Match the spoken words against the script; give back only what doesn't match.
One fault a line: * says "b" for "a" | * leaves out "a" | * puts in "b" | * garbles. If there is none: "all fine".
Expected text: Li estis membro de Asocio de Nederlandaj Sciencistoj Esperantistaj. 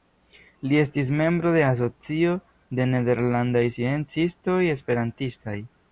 all fine